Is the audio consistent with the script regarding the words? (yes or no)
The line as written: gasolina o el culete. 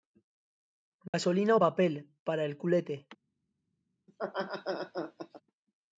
no